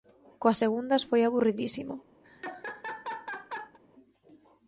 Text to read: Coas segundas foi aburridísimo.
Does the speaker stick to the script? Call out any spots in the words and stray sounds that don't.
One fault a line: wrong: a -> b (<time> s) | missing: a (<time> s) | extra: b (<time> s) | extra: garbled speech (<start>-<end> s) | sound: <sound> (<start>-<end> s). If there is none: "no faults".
sound: laugh (2.2-3.8 s)